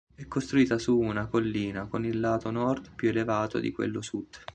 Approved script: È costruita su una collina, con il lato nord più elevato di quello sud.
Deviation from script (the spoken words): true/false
false